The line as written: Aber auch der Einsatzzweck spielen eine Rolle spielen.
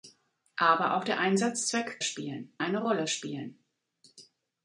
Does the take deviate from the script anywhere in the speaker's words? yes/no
no